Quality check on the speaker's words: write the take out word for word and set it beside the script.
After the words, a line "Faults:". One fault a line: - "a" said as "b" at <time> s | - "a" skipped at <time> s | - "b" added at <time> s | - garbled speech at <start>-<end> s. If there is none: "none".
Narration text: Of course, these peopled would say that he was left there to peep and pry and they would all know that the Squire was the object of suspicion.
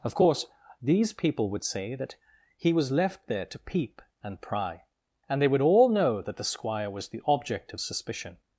Of course, these people would say that he was left there to peep and pry and they would all know that the Squire was the object of suspicion.
Faults:
- "peopled" said as "people" at 1.1 s